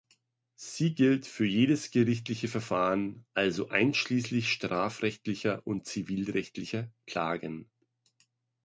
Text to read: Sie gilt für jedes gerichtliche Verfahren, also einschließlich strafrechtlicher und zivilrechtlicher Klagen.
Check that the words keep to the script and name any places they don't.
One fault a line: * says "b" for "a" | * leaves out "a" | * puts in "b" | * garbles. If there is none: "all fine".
all fine